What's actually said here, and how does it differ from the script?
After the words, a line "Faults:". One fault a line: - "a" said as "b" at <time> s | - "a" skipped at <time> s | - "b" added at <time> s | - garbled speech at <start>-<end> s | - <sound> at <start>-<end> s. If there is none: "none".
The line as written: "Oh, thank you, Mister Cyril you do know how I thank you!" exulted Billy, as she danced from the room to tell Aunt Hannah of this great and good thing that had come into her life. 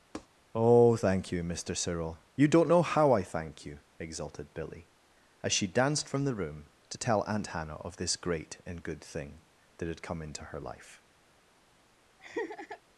"Oh, thank you, Mister Cyril you don't know how I thank you!" exulted Billy, as she danced from the room to tell Aunt Hannah of this great and good thing that had come into her life.
Faults:
- tap at 0.1-0.3 s
- "do" said as "don't" at 2.5 s
- laugh at 12.2-12.8 s